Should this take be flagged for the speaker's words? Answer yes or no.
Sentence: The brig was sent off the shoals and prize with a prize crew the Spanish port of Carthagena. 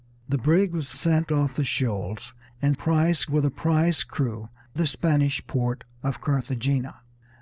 no